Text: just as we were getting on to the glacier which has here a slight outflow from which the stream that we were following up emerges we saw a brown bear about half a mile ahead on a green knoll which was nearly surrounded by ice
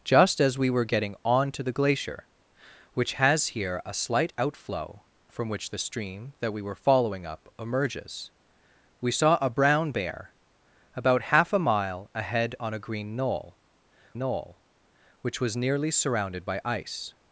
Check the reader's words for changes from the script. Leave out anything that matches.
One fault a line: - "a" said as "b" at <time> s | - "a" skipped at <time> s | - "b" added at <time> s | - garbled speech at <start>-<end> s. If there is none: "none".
- "knoll" added at 14.2 s